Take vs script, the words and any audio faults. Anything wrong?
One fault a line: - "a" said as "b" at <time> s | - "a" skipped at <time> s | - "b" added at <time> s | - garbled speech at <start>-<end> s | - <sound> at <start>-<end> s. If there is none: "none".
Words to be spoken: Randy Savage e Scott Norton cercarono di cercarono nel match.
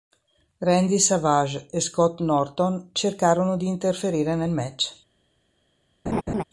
- "cercarono" said as "interferire" at 3.7 s
- laugh at 6.1-6.4 s